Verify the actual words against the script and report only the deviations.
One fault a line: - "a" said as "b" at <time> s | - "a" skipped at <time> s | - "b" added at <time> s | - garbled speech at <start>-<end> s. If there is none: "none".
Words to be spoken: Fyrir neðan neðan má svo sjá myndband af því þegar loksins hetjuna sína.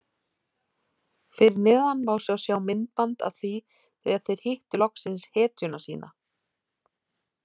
- "neðan" skipped at 2.0 s
- "þeir hittu" added at 4.3 s